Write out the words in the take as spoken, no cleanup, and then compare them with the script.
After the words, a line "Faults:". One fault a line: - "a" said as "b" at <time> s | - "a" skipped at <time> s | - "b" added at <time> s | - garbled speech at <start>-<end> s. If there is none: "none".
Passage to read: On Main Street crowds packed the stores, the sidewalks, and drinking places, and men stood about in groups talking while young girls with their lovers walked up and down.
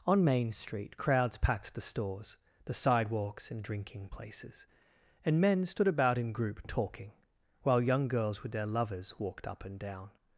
On Main Street crowds packed the stores, the sidewalks, and drinking places, and men stood about in group talking while young girls with their lovers walked up and down.
Faults:
- "groups" said as "group" at 6.3 s